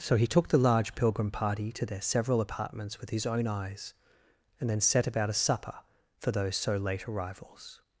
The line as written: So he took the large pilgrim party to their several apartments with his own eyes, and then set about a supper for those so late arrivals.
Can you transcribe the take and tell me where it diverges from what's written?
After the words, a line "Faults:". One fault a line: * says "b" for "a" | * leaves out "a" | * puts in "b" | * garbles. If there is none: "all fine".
So he took the large pilgrim party to their several apartments with his own eyes, and then set about a supper for those so late arrivals.
Faults:
all fine